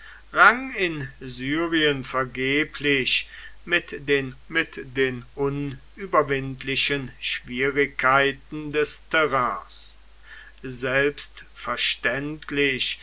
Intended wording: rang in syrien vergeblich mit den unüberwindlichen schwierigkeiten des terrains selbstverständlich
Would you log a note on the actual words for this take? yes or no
yes